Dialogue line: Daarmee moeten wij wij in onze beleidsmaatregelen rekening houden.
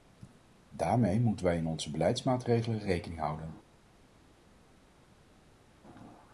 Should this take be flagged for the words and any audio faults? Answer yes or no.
yes